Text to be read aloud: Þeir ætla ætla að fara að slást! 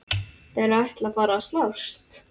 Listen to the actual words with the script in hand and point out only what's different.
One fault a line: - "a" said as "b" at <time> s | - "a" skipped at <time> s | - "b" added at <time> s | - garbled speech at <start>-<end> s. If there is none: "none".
- "ætla" skipped at 1.1 s